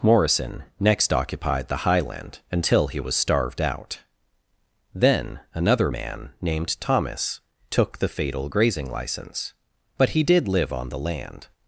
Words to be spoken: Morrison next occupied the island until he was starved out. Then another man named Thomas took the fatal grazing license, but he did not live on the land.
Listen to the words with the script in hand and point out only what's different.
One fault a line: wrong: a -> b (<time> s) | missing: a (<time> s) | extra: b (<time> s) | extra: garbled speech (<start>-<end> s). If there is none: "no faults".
wrong: island -> highland (1.8 s)
missing: not (10.5 s)